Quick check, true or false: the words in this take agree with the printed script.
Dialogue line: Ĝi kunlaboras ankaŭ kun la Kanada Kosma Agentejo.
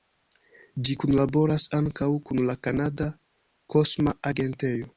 true